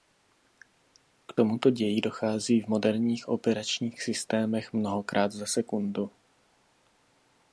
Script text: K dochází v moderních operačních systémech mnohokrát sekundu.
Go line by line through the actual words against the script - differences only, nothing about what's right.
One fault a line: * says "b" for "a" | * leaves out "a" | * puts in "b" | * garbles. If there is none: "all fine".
* puts in "tomuto ději"
* puts in "za"